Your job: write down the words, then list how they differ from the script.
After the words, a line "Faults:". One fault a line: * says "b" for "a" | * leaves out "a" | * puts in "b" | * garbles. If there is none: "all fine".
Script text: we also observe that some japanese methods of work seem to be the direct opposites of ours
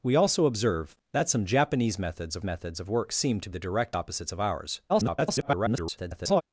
we also observe that some japanese methods of methods of work seem to the direct opposites of ours [garbled]
Faults:
* puts in "methods of"
* leaves out "be"
* garbles